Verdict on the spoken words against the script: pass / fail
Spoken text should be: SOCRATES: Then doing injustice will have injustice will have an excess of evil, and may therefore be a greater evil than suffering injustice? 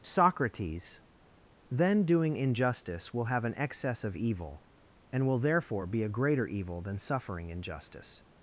fail